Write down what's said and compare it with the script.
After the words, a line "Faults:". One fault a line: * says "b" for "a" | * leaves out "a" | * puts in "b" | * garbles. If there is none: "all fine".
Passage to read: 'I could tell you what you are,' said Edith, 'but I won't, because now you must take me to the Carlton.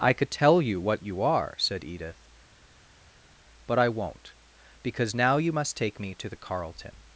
'I could tell you what you are,' said Edith, 'but I won't, because now you must take me to the Carlton.
Faults:
all fine